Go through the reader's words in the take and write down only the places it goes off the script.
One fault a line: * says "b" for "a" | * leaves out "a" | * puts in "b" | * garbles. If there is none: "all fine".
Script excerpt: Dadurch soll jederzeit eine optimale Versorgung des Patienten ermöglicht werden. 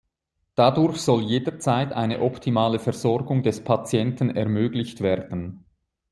all fine